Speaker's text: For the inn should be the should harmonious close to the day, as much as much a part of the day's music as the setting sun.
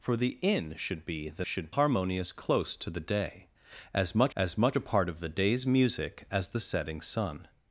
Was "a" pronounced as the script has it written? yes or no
yes